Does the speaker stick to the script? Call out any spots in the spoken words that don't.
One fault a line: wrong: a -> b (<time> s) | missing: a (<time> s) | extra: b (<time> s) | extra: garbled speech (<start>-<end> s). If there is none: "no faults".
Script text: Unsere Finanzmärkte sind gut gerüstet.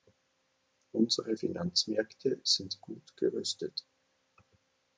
no faults